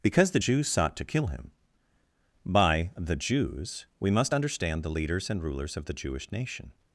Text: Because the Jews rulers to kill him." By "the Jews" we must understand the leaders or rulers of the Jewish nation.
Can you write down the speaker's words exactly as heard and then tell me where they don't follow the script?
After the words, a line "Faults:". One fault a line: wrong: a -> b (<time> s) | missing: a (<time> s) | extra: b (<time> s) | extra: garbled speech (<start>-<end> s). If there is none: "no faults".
Because the Jews sought to kill him." By "the Jews" we must understand the leaders and rulers of the Jewish nation.
Faults:
wrong: rulers -> sought (0.7 s)
wrong: or -> and (5.3 s)